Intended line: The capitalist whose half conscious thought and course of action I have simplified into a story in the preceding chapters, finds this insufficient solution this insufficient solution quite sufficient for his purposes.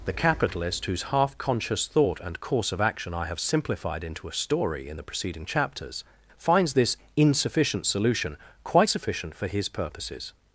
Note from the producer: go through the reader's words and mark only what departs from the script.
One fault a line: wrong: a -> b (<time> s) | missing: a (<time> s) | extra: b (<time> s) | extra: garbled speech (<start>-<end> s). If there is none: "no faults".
missing: this insufficient solution (8.4 s)